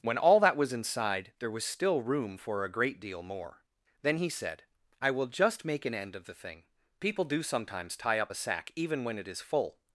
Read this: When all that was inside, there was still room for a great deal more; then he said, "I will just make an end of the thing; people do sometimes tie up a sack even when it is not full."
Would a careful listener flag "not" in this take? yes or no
yes